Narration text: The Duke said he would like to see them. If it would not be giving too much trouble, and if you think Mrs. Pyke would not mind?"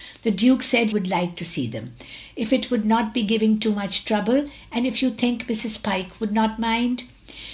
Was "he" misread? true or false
true